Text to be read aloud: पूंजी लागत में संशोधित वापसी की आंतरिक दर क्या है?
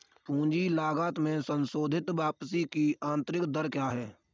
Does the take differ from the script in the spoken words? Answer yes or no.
no